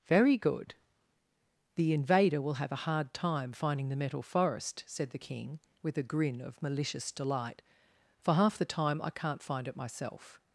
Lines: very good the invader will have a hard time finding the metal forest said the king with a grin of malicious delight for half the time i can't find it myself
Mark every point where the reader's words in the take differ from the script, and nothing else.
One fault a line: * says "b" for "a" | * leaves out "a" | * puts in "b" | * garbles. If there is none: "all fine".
all fine